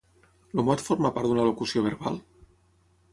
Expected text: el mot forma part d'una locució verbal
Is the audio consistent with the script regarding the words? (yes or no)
yes